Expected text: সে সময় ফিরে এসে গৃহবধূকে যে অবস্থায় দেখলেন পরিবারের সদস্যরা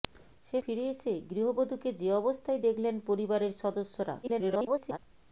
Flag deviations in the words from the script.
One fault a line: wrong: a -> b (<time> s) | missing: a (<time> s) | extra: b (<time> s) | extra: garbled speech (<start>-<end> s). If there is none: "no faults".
missing: সময় (0.6 s)
extra: garbled speech (4.2-5.0 s)